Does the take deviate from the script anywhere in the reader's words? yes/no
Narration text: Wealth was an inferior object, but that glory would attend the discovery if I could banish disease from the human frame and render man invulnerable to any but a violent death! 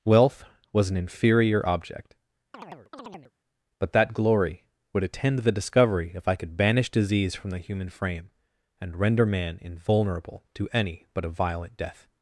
no